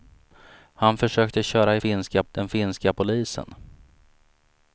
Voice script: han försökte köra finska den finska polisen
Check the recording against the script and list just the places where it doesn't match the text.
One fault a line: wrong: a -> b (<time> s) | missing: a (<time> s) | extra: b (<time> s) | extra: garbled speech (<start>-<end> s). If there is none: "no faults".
no faults